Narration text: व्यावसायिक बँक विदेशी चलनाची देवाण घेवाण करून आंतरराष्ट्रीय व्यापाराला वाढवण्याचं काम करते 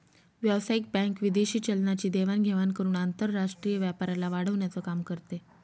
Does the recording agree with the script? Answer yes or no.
yes